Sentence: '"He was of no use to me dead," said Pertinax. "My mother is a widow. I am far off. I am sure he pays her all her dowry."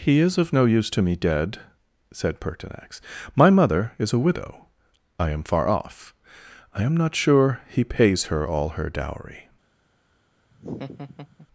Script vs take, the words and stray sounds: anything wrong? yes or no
yes